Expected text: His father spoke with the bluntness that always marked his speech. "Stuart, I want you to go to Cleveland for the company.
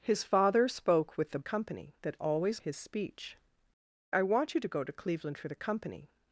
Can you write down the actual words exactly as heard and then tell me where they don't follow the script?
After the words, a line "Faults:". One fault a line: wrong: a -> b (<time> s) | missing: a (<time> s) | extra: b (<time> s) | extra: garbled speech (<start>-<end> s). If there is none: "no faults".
His father spoke with the company that always his speech. "I want you to go to Cleveland for the company.
Faults:
wrong: bluntness -> company (1.4 s)
missing: marked (2.6 s)
missing: Stuart (3.4 s)